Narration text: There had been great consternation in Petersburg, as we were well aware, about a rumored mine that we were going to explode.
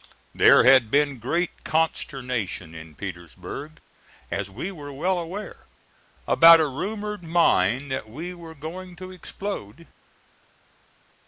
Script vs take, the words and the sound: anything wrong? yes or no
no